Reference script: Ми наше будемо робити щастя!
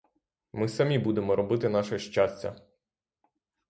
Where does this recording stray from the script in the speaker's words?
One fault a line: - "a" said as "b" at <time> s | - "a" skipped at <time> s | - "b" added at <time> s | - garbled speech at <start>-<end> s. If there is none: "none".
- "наше" said as "самі" at 0.7 s
- "наше" added at 1.7 s